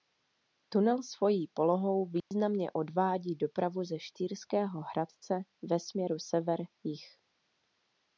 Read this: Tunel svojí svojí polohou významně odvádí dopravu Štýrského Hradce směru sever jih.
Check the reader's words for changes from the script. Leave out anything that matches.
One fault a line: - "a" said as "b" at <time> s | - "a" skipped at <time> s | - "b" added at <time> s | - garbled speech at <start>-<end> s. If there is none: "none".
- "svojí" skipped at 1.5 s
- "ze" added at 3.8 s
- "ve" added at 5.6 s